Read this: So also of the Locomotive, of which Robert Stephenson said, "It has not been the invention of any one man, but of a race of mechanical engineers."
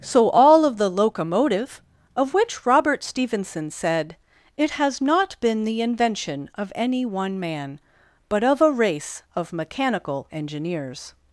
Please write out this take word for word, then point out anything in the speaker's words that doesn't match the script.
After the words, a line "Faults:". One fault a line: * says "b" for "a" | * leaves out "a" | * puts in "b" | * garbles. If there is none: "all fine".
So all of the Locomotive, of which Robert Stephenson said, "It has not been the invention of any one man, but of a race of mechanical engineers."
Faults:
* says "all" for "also"